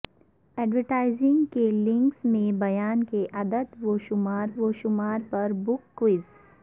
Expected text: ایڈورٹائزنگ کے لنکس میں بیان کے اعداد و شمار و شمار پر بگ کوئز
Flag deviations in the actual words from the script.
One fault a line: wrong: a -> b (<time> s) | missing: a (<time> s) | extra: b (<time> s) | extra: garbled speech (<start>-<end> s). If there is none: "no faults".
no faults